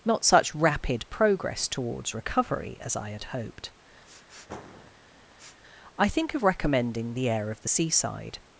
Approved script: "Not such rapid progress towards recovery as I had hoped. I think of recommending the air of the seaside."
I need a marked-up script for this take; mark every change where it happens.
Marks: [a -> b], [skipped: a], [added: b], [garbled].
"Not such rapid progress towards recovery as I had hoped. I think of recommending the air of the seaside."